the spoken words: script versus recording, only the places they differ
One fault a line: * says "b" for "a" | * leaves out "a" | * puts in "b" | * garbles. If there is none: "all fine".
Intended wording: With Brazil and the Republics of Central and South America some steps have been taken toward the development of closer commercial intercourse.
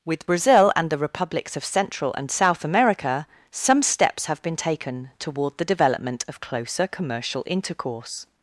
all fine